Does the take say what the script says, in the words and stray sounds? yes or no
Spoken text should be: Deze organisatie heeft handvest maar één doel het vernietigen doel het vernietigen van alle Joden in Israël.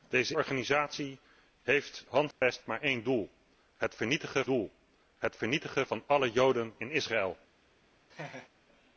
no